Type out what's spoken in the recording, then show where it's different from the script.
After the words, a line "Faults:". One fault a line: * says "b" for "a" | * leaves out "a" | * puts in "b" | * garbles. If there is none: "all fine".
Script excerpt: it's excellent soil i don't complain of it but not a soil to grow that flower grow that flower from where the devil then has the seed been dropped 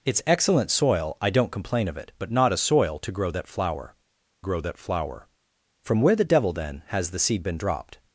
it's excellent soil i don't complain of it but not a soil to grow that flower grow that flower from where the devil then has the seed been dropped
Faults:
all fine